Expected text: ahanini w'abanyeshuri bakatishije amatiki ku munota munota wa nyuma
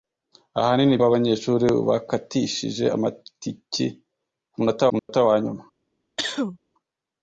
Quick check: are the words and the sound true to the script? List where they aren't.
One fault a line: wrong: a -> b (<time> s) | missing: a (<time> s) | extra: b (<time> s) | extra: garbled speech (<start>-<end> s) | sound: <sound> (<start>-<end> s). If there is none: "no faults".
sound: dropout (5.0-5.1 s)
sound: cough (6.2-6.6 s)